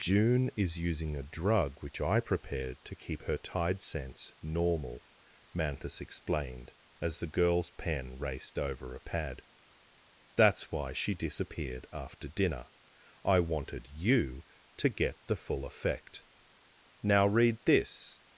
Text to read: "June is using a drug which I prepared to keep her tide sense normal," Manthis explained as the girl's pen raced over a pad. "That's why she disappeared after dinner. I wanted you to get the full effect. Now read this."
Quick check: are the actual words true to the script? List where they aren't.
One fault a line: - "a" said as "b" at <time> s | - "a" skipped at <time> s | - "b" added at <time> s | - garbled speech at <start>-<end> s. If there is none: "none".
none